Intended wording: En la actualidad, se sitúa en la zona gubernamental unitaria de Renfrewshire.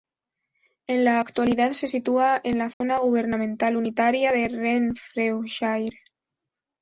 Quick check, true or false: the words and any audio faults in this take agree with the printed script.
false